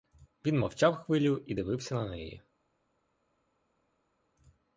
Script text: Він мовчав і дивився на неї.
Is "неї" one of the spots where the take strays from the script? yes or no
no